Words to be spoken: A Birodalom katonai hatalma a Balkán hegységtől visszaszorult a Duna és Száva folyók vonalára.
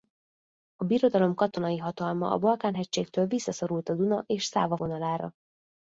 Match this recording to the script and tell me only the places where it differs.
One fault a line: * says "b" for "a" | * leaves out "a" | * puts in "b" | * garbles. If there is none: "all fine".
* leaves out "folyók"